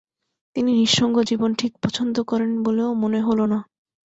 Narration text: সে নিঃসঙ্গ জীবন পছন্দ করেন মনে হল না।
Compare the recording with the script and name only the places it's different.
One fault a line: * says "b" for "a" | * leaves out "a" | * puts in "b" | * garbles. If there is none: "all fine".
* says "তিনি" for "সে"
* puts in "ঠিক"
* puts in "বলেও"